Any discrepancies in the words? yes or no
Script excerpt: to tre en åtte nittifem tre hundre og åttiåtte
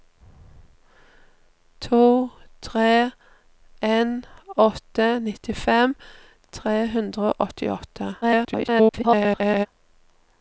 yes